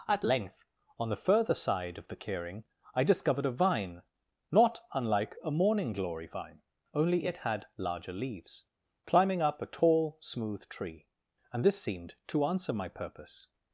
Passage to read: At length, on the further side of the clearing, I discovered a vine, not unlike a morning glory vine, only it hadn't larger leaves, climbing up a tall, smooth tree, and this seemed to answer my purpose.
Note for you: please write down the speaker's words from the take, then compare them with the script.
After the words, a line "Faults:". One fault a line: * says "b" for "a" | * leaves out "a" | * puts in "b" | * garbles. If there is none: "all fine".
At length, on the further side of the clearing, I discovered a vine, not unlike a morning glory vine, only it had larger leaves, climbing up a tall, smooth tree, and this seemed to answer my purpose.
Faults:
* says "had" for "hadn't"